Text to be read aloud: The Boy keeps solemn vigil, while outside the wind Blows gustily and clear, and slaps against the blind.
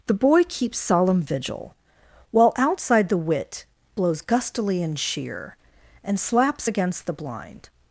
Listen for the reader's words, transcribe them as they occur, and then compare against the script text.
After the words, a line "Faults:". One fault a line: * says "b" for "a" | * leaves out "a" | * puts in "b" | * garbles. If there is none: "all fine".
The Boy keeps solemn vigil, while outside the wit Blows gustily and sheer, and slaps against the blind.
Faults:
* says "wit" for "wind"
* says "sheer" for "clear"